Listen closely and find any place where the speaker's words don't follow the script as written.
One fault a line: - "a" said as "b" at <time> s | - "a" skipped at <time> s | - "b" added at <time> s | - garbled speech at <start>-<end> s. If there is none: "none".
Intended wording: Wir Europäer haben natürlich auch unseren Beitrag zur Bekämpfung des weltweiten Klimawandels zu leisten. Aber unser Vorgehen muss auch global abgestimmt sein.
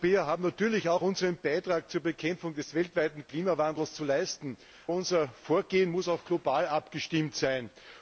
- "Aber" skipped at 4.6 s